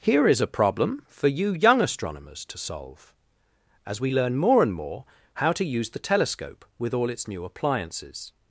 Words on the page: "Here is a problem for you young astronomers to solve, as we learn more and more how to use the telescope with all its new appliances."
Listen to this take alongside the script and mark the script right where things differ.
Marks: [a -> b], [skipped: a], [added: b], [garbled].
"Here is a problem for you young astronomers to solve, as we learn more and more how to use the telescope with all its new appliances."